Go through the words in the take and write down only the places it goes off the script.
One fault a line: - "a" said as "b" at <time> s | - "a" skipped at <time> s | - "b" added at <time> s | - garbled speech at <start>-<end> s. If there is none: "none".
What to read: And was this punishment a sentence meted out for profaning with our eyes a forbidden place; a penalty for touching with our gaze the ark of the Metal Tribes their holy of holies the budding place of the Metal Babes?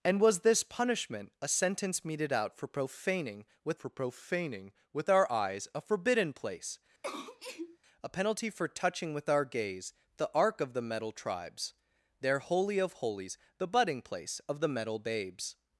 - "for profaning with" added at 3.8 s